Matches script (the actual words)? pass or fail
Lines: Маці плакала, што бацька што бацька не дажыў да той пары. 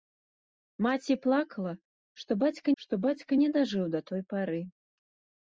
pass